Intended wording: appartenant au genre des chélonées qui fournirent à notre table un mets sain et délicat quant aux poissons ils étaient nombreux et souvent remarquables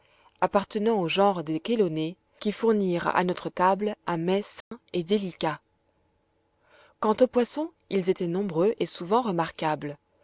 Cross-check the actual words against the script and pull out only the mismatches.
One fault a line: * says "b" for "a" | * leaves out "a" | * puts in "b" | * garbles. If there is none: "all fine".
all fine